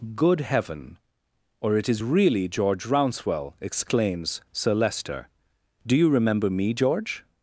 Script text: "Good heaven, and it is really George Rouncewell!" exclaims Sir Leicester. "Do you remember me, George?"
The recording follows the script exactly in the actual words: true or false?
false